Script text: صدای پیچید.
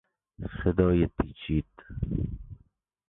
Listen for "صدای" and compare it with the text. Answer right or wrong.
right